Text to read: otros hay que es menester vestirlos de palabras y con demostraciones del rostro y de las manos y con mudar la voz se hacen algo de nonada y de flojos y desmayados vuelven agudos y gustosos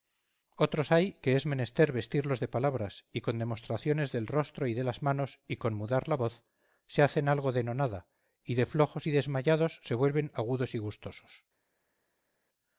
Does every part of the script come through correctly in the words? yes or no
no